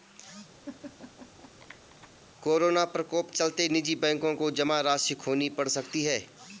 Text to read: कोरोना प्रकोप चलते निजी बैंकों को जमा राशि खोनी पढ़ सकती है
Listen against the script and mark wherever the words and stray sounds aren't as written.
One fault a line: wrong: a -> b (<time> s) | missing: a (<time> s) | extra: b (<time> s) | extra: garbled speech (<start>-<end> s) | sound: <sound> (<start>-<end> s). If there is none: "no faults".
sound: laugh (0.6-2.1 s)